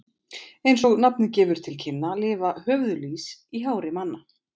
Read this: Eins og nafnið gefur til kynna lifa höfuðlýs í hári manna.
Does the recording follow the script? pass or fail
pass